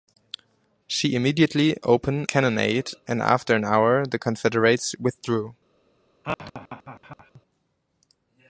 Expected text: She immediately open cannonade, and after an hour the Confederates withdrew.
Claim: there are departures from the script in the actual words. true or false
false